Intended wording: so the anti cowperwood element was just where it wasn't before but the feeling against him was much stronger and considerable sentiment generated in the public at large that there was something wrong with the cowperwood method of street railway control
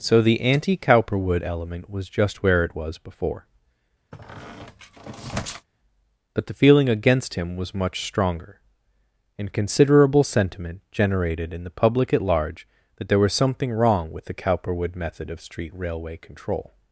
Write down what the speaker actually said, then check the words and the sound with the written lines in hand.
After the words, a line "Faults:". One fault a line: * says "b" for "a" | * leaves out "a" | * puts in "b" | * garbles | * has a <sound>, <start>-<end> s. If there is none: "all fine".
so the anti cowperwood element was just where it was before but the feeling against him was much stronger and considerable sentiment generated in the public at large that there was something wrong with the cowperwood method of street railway control
Faults:
* says "was" for "wasn't"
* has a squeak, 4.1-5.7 s